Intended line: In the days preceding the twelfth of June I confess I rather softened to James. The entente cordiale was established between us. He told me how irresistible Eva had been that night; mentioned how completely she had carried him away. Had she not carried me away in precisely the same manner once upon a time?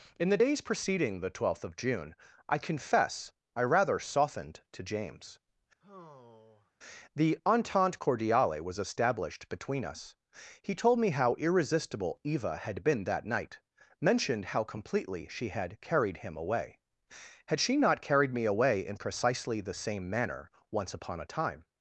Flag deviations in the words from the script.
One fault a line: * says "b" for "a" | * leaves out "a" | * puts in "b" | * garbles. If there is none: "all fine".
all fine